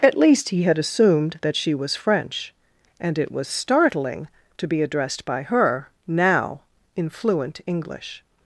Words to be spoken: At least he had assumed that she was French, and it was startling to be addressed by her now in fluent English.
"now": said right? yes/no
yes